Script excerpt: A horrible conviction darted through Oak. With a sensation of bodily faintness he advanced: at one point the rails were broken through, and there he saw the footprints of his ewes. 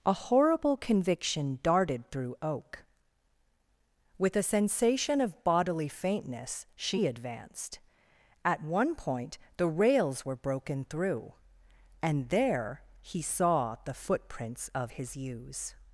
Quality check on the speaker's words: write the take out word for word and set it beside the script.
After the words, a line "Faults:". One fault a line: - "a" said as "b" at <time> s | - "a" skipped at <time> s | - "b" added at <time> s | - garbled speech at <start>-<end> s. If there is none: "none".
A horrible conviction darted through Oak. With a sensation of bodily faintness she advanced: at one point the rails were broken through, and there he saw the footprints of his ewes.
Faults:
- "he" said as "she" at 6.7 s